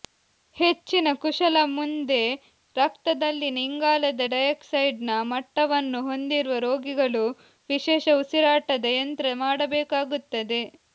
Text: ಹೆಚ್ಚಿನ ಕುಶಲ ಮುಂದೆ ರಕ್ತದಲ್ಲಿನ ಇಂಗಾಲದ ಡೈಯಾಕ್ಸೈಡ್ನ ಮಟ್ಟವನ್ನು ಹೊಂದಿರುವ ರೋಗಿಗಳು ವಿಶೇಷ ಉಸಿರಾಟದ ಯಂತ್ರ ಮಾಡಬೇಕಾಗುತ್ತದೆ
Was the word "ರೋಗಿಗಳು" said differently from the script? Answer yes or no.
no